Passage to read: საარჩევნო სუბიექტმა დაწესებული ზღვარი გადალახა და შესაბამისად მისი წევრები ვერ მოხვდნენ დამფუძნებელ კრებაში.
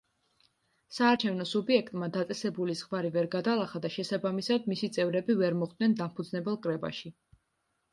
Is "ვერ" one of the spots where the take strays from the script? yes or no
no